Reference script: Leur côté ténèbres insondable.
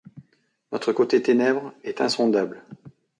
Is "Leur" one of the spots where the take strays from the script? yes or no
yes